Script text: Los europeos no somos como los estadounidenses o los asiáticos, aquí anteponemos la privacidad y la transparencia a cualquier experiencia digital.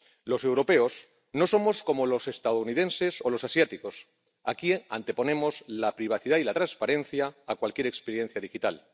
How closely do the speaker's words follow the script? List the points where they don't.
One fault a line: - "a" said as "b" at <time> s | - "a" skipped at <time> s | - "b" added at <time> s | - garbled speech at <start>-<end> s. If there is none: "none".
none